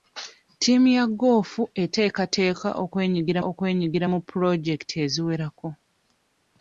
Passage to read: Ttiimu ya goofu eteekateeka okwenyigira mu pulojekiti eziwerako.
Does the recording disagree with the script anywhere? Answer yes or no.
yes